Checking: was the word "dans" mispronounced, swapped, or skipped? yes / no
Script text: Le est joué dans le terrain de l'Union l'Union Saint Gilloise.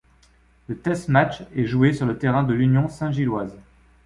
yes